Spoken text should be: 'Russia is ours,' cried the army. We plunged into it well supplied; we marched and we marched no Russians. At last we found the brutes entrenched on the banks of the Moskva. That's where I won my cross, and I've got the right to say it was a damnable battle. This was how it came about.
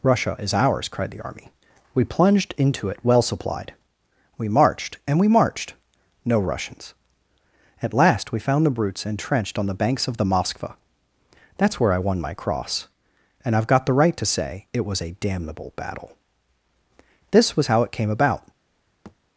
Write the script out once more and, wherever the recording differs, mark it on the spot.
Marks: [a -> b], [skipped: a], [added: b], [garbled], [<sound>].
'Russia is ours,' cried the army. We plunged into it well supplied; we marched and we marched no Russians. At last we found the brutes entrenched on the banks of the Moskva. That's where I won my cross, and I've got the right to say it was a damnable battle. This was how it came about. [thud]